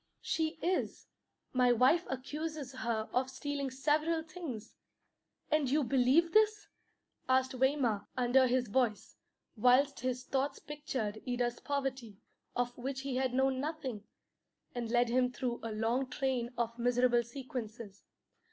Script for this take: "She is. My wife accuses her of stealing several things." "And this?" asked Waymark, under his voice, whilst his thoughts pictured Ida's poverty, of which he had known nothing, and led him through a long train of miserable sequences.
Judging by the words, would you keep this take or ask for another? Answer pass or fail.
fail